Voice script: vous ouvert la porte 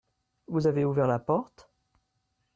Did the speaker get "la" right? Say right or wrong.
right